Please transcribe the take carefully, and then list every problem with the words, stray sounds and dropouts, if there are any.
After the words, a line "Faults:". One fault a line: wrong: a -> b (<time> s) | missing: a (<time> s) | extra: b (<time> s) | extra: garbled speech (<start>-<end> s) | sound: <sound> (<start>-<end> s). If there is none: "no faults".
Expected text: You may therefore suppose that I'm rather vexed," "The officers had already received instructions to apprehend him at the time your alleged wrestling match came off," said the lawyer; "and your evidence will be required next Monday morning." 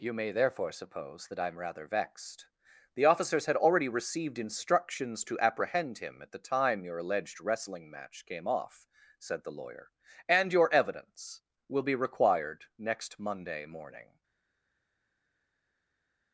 You may therefore suppose that I'm rather vexed," "The officers had already received instructions to apprehend him at the time your alleged wrestling match came off," said the lawyer; "and your evidence will be required next Monday morning."
Faults:
no faults